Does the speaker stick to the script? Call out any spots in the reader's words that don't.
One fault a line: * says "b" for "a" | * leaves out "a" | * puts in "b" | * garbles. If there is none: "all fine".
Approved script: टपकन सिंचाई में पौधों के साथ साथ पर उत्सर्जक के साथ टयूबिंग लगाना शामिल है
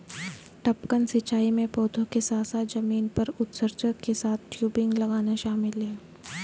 * puts in "जमीन"